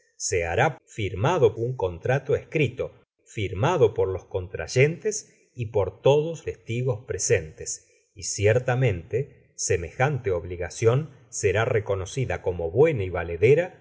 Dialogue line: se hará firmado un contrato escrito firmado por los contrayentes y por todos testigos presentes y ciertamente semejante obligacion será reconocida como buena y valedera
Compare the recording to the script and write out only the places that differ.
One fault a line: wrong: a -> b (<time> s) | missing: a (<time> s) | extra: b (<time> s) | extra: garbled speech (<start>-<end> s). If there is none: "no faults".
no faults